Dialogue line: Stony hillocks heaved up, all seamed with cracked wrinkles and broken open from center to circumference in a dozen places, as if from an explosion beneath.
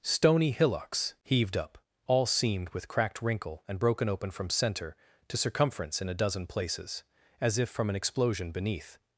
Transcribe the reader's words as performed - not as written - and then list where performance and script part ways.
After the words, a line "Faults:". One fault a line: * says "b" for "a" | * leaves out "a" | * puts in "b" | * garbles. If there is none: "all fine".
Stony hillocks heaved up, all seamed with cracked wrinkle and broken open from center to circumference in a dozen places, as if from an explosion beneath.
Faults:
* says "wrinkle" for "wrinkles"